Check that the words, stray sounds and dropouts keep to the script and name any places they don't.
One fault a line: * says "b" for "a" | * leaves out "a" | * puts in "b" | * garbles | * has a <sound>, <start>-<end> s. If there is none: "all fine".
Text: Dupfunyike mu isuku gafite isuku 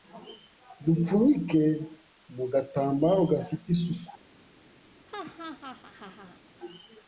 * says "gatambaro" for "isuku"
* has a laugh, 5.1-6.4 s